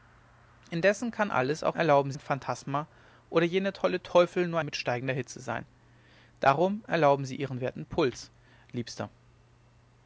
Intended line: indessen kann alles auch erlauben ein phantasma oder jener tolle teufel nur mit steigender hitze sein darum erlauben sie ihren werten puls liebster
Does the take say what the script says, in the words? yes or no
yes